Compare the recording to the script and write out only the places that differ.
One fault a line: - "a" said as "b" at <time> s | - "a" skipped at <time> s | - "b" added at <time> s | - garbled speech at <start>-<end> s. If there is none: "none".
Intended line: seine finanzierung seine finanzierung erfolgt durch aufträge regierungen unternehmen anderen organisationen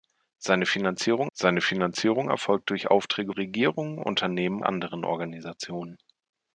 none